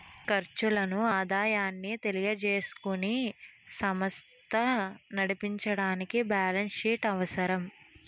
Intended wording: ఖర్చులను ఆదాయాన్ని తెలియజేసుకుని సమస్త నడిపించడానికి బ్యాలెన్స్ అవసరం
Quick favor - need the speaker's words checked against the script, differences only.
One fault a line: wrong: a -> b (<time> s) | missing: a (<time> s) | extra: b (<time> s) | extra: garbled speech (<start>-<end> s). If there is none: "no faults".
extra: షీట్ (6.8 s)